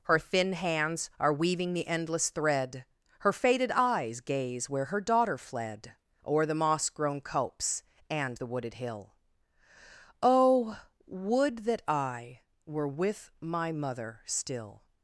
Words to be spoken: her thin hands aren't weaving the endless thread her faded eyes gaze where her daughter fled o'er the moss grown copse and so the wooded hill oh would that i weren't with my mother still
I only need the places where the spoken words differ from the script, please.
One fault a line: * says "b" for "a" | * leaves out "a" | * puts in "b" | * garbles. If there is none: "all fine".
* says "are" for "aren't"
* leaves out "so"
* says "were" for "weren't"